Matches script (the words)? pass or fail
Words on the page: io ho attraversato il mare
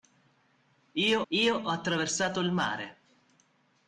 fail